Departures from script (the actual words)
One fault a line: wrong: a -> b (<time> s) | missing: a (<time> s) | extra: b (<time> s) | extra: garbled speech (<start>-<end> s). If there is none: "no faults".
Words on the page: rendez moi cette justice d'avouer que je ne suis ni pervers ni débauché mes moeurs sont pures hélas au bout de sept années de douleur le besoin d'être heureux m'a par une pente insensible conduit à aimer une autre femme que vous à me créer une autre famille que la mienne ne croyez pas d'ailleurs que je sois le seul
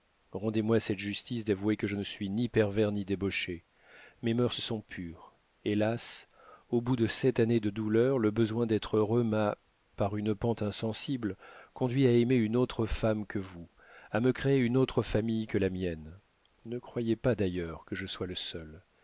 no faults